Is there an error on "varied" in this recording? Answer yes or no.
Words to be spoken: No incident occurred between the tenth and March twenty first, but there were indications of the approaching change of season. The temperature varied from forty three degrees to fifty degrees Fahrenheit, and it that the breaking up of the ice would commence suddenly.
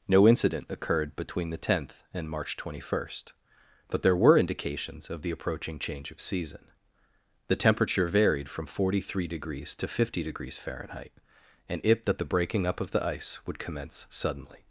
no